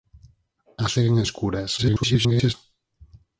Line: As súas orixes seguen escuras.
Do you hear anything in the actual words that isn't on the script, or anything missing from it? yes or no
yes